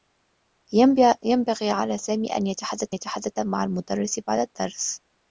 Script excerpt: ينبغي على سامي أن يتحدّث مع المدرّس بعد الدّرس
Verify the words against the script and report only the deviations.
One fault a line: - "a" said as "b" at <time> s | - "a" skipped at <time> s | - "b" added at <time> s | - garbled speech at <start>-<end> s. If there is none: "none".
- "يتحدّث" added at 2.9 s